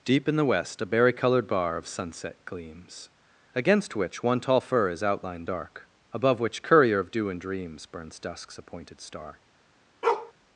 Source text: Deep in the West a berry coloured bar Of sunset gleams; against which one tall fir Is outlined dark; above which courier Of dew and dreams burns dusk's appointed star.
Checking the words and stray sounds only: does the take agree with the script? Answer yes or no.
no